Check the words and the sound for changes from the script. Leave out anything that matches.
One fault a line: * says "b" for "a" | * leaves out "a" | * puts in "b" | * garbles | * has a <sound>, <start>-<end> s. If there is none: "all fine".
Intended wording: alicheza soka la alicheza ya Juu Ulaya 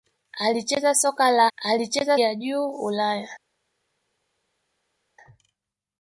all fine